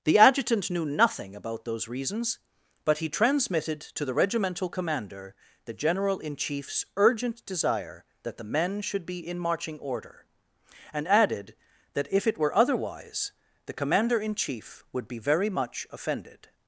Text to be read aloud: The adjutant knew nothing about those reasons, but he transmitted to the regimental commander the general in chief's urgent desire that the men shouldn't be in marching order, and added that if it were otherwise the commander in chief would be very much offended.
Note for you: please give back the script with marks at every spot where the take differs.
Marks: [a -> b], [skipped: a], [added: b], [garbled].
The adjutant knew nothing about those reasons, but he transmitted to the regimental commander the general in chief's urgent desire that the men [shouldn't -> should] be in marching order, and added that if it were otherwise the commander in chief would be very much offended.